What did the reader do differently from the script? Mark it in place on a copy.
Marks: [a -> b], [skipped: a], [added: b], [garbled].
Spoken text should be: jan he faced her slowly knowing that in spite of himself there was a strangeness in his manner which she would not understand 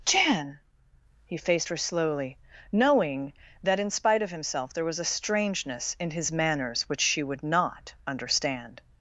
jan he faced her slowly knowing that in spite of himself there was a strangeness in his [manner -> manners] which she would not understand